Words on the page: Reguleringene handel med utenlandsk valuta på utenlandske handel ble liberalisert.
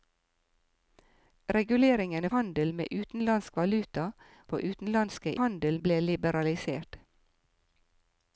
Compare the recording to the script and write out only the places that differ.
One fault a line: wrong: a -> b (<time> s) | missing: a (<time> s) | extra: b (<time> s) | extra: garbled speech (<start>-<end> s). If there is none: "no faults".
no faults